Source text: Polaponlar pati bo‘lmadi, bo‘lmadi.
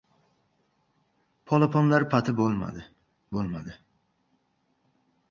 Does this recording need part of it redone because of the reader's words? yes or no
no